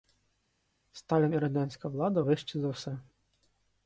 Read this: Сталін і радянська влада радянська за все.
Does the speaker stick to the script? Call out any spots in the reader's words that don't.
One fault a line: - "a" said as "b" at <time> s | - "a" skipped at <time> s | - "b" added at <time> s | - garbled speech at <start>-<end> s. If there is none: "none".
- "радянська" said as "вищі" at 2.2 s